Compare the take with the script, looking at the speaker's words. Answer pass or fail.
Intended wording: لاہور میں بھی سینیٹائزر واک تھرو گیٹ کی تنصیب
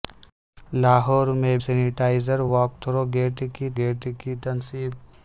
fail